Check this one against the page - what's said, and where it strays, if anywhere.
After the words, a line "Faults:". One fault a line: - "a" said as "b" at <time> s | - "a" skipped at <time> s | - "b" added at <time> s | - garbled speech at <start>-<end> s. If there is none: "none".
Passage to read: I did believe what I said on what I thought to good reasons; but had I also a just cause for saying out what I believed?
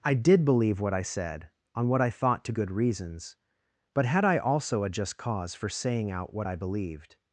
I did believe what I said on what I thought to good reasons; but had I also a just cause for saying out what I believed?
Faults:
none